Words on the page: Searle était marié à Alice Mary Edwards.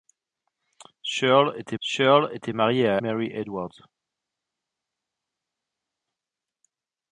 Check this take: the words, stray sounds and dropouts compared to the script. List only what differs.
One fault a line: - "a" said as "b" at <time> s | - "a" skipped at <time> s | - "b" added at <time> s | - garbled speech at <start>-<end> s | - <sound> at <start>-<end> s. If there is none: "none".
- "searle était" added at 1.8 s
- "Alice" skipped at 3.0 s